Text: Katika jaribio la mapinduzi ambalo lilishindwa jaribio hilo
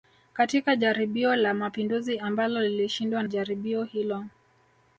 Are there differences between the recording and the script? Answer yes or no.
no